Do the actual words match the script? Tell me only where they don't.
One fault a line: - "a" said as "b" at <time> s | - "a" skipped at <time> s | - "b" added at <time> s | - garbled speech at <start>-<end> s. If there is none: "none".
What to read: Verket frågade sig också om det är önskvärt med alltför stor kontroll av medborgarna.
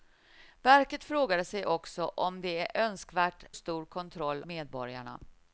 - "med alltför" skipped at 3.5 s
- "av" skipped at 4.4 s